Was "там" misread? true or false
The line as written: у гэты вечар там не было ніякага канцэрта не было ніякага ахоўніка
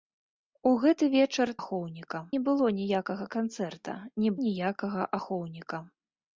true